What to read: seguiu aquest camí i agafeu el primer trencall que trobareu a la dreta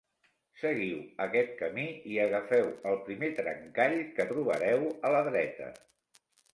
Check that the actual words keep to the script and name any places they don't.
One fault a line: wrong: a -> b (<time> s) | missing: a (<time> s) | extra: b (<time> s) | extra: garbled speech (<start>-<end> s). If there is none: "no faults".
no faults